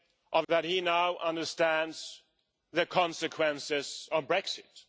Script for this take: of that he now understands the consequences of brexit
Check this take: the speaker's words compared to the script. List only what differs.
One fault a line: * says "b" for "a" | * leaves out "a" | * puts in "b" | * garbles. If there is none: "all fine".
all fine